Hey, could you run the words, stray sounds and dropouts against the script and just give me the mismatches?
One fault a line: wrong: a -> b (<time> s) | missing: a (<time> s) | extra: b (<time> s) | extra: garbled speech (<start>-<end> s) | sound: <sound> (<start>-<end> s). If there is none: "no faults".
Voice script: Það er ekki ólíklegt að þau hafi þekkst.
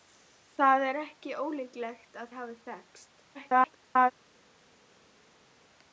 missing: þau (2.3 s)
extra: garbled speech (3.3-4.1 s)